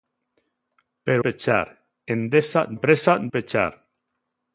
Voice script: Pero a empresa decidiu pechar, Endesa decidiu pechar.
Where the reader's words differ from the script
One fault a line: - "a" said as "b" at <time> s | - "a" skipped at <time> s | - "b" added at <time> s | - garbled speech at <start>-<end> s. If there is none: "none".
- "a empresa decidiu" skipped at 1.2 s
- "decidiu" said as "empresa" at 2.7 s